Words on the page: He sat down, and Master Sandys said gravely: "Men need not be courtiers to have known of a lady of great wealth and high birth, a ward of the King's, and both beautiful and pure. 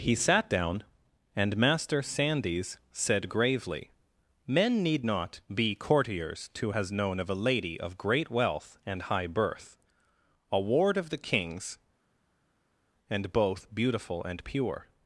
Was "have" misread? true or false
true